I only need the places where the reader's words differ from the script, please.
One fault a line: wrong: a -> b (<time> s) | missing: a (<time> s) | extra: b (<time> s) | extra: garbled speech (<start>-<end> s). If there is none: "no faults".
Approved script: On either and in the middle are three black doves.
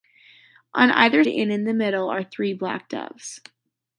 no faults